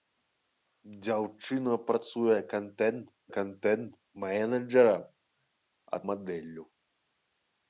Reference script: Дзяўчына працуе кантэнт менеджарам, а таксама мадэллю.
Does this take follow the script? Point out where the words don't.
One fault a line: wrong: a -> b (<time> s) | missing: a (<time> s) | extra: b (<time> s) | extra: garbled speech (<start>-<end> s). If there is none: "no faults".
extra: кантэнт (3.4 s)
missing: таксама (6.0 s)